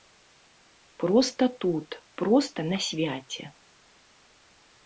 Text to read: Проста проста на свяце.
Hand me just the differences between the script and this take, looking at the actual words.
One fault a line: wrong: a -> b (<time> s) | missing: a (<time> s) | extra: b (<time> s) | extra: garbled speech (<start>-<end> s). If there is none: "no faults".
extra: тут (1.6 s)